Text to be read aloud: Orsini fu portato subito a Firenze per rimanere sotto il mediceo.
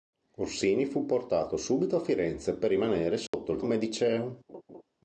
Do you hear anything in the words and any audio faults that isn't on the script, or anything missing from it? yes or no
yes